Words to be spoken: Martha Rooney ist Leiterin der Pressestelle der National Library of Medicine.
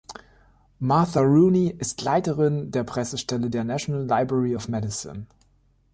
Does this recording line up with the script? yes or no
yes